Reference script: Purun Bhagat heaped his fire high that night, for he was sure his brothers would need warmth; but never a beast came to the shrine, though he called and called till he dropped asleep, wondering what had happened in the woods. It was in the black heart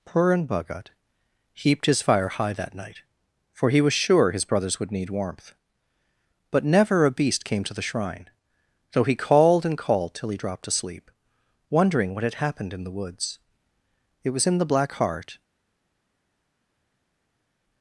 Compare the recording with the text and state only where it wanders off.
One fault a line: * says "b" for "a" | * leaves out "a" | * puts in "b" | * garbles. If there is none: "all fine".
all fine